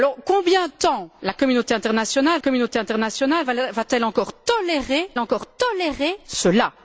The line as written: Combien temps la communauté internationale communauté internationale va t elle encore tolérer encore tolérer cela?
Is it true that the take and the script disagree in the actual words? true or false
false